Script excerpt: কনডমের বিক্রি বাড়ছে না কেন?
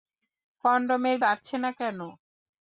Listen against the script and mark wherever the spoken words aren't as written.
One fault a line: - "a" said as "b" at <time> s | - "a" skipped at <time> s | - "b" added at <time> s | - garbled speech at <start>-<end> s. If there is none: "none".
- "বিক্রি" skipped at 1.2 s